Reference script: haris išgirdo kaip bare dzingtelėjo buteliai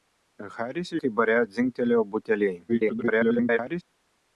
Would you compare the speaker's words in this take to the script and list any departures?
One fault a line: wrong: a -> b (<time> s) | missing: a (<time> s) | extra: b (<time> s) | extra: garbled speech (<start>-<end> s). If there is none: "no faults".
missing: išgirdo (0.9 s)
extra: garbled speech (2.7-3.8 s)